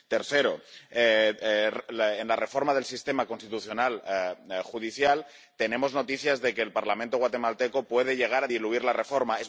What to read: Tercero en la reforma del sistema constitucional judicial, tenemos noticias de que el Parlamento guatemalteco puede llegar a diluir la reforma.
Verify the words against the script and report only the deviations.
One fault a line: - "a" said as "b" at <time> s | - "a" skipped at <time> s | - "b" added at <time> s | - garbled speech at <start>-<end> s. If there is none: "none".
none